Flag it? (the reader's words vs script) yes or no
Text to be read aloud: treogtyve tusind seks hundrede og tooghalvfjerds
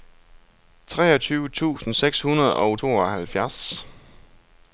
no